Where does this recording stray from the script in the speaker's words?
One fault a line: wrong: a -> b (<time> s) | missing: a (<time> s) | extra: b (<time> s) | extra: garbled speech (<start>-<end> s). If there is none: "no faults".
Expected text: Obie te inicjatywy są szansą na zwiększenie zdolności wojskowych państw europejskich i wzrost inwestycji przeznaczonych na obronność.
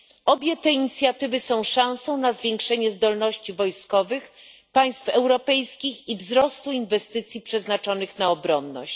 no faults